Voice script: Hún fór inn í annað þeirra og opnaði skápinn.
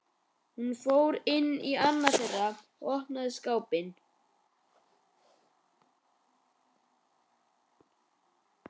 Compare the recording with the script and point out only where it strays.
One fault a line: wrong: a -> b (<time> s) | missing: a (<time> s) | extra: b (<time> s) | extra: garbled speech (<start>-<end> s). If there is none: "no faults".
no faults